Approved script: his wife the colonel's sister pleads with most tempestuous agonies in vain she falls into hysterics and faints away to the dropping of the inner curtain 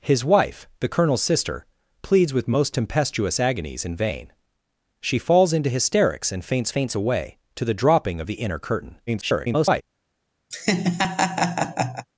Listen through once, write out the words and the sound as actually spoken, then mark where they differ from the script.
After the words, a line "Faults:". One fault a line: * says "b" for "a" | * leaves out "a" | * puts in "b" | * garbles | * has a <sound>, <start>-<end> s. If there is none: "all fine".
his wife the colonel's sister pleads with most tempestuous agonies in vain she falls into hysterics and faints faints away to the dropping of the inner curtain [garbled]
Faults:
* puts in "faints"
* garbles
* has a laugh, 10.5-12.1 s